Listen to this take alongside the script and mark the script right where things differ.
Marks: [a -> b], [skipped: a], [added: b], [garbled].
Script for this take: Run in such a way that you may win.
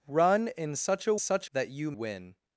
Run in such a [way -> such] that you [skipped: may] win.